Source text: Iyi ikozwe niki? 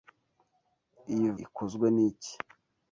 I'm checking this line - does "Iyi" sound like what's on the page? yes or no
yes